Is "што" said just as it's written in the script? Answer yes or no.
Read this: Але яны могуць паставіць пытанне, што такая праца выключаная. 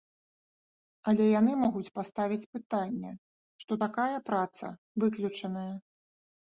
yes